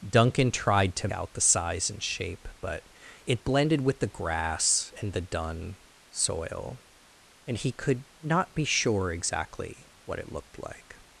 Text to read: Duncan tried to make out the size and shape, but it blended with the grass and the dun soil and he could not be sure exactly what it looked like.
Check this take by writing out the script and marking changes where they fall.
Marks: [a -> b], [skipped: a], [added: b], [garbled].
Duncan tried to [skipped: make] out the size and shape, but it blended with the grass and the dun soil and he could not be sure exactly what it looked like.